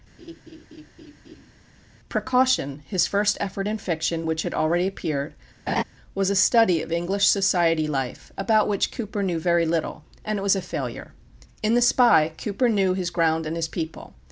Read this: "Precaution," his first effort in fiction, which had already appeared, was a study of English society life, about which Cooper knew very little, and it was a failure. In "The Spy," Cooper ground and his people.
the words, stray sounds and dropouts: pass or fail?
fail